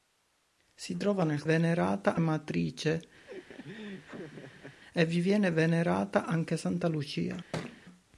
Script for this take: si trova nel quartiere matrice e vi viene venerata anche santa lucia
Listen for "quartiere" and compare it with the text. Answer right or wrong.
wrong